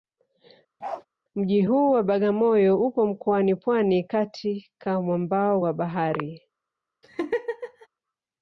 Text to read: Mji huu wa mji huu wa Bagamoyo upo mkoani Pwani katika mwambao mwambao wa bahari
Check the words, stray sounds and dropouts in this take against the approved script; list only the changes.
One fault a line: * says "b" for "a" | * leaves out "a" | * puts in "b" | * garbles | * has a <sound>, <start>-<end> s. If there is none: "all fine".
* has a bark, 0.8-1.1 s
* leaves out "mji huu wa"
* leaves out "mwambao"
* has a laugh, 7.0-7.9 s